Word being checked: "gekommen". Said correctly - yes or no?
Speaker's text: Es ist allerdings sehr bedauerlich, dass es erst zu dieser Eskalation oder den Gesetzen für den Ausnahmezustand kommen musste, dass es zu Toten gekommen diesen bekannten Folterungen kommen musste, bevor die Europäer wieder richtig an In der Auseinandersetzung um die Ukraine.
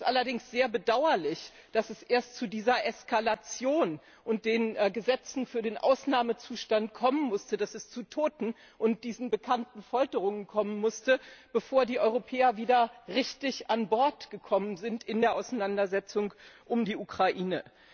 no